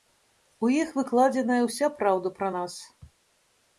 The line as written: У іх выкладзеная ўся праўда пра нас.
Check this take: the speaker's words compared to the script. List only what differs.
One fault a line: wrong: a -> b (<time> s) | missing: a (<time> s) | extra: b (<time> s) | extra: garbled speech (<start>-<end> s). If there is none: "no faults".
no faults